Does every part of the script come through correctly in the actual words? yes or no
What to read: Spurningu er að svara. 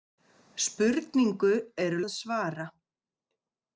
yes